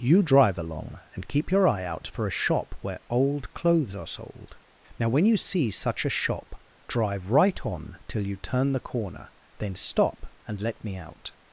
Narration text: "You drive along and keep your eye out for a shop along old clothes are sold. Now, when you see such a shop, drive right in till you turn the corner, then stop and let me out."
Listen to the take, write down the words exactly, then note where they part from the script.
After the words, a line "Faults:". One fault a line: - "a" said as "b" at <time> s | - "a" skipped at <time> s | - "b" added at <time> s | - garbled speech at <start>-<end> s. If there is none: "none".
"You drive along and keep your eye out for a shop where old clothes are sold. Now, when you see such a shop, drive right on till you turn the corner, then stop and let me out."
Faults:
- "along" said as "where" at 2.8 s
- "in" said as "on" at 7.6 s